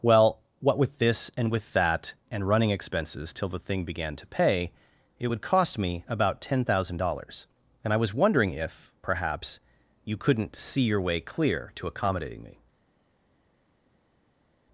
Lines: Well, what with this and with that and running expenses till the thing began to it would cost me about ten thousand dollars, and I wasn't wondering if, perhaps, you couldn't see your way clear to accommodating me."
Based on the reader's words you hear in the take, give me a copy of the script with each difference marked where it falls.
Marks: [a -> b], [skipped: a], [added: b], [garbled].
Well, what with this and with that and running expenses till the thing began to [added: pay] it would cost me about ten thousand dollars, and I [wasn't -> was] wondering if, perhaps, you couldn't see your way clear to accommodating me."